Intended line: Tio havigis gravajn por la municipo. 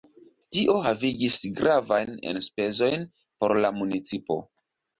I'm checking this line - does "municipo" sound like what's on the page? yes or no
yes